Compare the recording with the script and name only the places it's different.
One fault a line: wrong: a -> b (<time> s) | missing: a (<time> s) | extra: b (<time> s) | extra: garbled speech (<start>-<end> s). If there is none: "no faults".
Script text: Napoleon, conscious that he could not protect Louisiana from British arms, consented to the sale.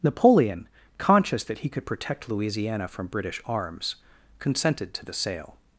missing: not (1.9 s)